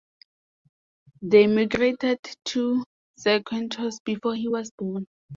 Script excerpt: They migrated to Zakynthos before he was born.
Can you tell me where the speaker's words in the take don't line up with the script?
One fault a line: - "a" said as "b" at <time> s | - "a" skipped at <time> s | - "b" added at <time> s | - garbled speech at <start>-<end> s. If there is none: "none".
none